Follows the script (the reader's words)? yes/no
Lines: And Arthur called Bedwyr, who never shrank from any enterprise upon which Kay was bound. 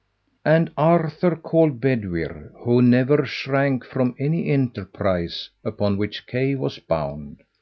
yes